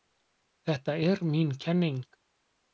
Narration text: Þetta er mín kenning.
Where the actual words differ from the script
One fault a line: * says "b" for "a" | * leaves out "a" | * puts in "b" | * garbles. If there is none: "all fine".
all fine